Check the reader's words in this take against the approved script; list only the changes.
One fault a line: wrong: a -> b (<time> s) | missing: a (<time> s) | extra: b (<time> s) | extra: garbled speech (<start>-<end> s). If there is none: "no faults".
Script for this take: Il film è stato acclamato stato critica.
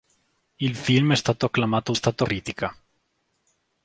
no faults